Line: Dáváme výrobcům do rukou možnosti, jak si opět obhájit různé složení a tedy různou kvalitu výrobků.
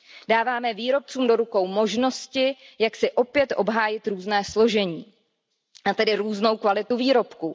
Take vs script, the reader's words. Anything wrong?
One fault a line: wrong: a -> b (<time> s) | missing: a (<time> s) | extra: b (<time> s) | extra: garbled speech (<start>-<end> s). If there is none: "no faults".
no faults